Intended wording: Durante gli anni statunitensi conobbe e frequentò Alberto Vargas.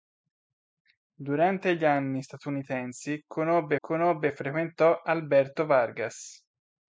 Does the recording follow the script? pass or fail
fail